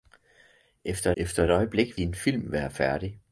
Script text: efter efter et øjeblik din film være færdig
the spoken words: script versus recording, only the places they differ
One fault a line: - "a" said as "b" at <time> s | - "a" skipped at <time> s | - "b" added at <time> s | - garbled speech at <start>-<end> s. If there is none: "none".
none